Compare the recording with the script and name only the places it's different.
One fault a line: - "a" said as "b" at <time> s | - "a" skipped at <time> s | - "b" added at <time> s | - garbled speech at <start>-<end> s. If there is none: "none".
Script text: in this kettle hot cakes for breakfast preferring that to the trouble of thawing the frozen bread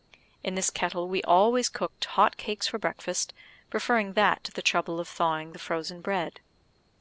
- "we always cooked" added at 1.1 s